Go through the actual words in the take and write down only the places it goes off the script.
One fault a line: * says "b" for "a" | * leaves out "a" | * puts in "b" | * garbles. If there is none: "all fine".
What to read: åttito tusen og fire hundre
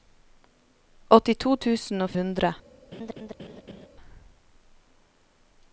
* leaves out "fire"